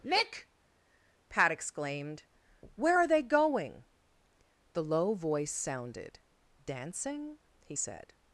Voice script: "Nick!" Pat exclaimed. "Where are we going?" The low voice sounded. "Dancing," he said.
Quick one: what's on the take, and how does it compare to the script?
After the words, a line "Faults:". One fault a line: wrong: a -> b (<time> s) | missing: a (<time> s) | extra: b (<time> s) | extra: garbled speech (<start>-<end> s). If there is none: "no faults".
"Nick!" Pat exclaimed. "Where are they going?" The low voice sounded. "Dancing," he said.
Faults:
wrong: we -> they (3.1 s)